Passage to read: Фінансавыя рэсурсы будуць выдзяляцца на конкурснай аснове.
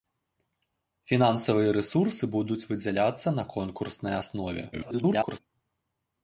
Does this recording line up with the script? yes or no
no